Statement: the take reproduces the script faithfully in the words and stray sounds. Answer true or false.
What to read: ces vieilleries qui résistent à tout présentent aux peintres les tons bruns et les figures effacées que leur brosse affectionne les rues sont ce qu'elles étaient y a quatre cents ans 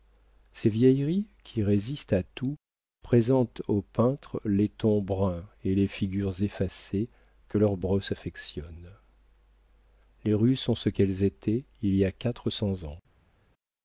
false